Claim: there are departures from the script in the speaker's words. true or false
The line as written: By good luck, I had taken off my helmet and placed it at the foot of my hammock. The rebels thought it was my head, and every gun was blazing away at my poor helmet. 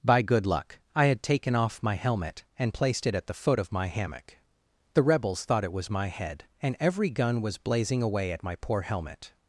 false